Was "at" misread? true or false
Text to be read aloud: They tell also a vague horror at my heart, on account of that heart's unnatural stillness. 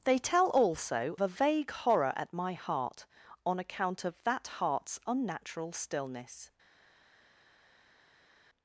false